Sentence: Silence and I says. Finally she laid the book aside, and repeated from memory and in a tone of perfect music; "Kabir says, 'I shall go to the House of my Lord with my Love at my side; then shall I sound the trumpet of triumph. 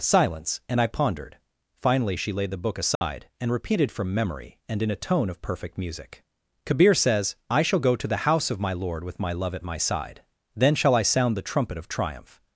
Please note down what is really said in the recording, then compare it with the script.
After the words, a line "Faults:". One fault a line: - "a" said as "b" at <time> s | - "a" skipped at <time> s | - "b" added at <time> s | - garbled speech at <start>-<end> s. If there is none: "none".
Silence and I pondered. Finally she laid the book aside, and repeated from memory and in a tone of perfect music; "Kabir says, 'I shall go to the House of my Lord with my Love at my side; then shall I sound the trumpet of triumph.
Faults:
- "says" said as "pondered" at 0.9 s